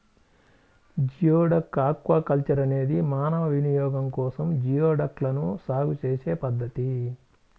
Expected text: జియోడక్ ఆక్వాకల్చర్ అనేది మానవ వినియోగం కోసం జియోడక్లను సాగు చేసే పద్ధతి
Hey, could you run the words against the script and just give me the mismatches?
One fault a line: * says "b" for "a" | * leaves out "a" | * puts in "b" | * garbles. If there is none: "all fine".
all fine